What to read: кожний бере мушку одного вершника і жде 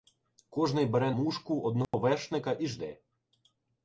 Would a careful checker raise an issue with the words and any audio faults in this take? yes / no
yes